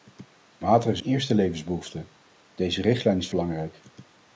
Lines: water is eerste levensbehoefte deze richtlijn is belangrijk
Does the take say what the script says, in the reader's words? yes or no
yes